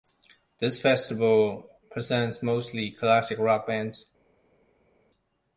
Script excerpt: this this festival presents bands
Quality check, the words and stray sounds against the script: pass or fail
fail